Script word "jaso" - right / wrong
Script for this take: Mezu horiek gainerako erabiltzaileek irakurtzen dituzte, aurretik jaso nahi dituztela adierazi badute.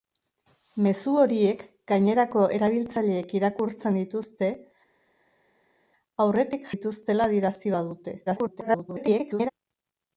wrong